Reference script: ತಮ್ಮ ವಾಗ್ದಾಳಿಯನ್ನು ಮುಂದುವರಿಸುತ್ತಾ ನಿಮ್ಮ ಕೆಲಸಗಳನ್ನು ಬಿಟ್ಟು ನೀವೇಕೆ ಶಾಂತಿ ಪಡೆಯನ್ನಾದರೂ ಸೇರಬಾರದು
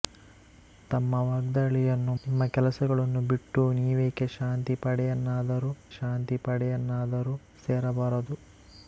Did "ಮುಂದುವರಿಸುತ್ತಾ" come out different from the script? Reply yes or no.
yes